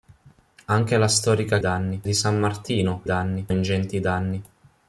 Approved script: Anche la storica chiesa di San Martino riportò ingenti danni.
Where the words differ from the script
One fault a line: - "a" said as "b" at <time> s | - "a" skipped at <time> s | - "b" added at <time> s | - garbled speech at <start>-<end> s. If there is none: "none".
- "chiesa" said as "danni" at 1.6 s
- "riportò" said as "danni" at 3.0 s